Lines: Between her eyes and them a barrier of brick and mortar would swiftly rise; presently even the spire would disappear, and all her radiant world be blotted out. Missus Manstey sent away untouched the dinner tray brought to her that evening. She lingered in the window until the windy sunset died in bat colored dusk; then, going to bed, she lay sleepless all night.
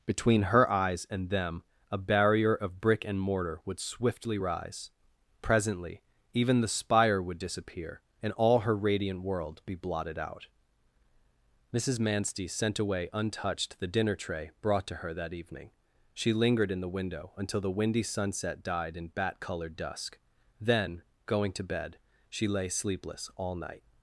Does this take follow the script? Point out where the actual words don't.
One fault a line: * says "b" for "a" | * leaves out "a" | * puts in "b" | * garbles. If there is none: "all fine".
all fine